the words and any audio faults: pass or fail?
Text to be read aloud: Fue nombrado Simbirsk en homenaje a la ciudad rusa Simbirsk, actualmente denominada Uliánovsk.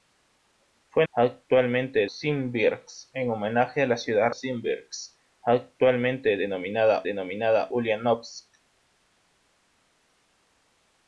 fail